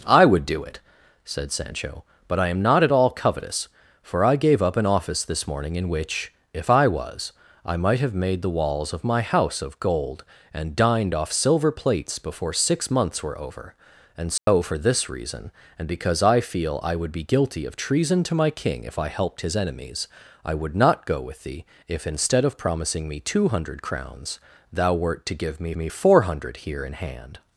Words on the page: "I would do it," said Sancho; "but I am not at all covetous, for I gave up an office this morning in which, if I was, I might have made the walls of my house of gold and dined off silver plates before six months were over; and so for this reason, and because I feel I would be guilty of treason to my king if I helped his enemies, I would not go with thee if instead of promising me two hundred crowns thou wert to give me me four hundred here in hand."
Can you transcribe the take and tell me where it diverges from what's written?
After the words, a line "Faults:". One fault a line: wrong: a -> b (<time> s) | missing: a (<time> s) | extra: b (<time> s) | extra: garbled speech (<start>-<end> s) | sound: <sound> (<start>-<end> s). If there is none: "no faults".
"I would do it," said Sancho; "but I am not at all covetous, for I gave up an office this morning in which, if I was, I might have made the walls of my house of gold and dined off silver plates before six months were over; and so for this reason, and because I feel I would be guilty of treason to my king if I helped his enemies, I would not go with thee if instead of promising me two hundred crowns thou wert to give me me four hundred here in hand."
Faults:
sound: dropout (14.4-14.5 s)